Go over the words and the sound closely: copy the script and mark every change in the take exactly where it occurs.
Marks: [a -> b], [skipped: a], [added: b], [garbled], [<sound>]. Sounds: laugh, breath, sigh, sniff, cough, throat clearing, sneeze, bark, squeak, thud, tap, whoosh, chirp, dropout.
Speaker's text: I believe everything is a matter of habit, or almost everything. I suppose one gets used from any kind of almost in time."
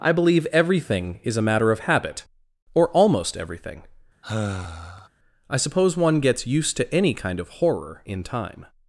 I believe everything is a matter of habit, or almost everything. [sigh] I suppose one gets used [from -> to] any kind of [almost -> horror] in time."